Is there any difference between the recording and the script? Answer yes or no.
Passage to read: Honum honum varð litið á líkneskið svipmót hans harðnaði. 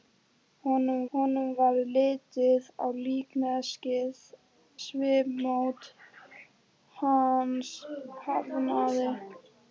no